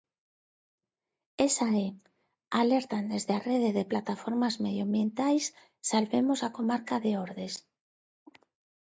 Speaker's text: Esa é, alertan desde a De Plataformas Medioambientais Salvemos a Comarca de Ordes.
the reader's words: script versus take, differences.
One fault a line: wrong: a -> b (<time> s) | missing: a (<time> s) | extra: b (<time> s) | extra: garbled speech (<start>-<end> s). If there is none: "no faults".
extra: Rede (3.5 s)